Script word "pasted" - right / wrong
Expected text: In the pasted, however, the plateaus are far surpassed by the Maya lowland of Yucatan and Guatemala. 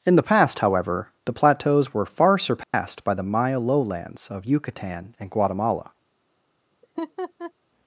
wrong